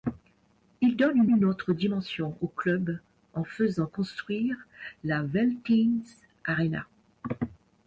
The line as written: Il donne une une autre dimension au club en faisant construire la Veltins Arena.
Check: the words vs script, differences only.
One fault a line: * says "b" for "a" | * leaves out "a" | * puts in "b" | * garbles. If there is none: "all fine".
all fine